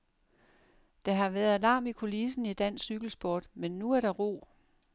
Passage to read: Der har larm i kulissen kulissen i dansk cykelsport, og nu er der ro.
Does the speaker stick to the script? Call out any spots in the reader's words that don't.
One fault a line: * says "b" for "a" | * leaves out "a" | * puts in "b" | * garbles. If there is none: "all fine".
* puts in "været"
* leaves out "kulissen"
* says "men" for "og"